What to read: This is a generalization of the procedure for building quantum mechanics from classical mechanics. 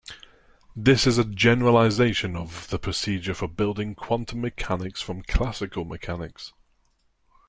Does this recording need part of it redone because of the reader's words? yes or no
no